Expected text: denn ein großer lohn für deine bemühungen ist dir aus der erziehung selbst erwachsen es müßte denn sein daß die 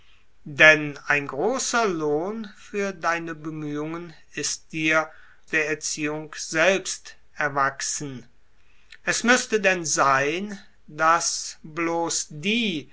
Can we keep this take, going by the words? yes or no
no